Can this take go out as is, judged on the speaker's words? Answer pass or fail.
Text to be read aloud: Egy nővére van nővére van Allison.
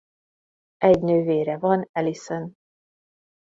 fail